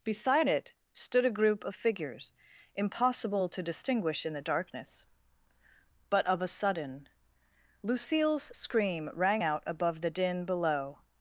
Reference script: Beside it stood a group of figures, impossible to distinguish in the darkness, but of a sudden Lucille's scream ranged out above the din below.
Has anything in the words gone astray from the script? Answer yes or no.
yes